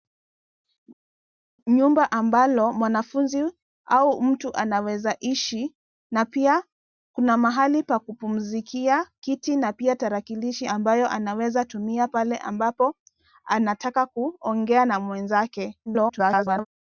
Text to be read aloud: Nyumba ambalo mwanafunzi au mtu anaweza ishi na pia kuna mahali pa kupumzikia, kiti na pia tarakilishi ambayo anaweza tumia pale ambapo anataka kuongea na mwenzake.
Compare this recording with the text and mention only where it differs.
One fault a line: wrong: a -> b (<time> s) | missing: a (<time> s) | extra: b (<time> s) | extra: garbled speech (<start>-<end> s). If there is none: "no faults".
extra: garbled speech (15.9-16.7 s)